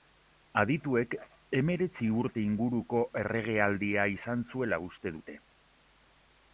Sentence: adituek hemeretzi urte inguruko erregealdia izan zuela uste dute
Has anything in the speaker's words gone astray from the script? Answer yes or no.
no